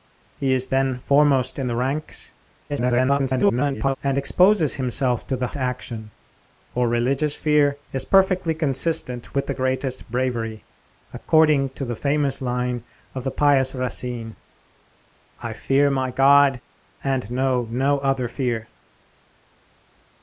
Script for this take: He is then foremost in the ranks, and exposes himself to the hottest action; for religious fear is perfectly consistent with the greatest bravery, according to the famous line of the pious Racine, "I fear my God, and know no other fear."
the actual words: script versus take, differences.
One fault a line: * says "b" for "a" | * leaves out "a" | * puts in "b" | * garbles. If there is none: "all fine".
* garbles
* leaves out "hottest"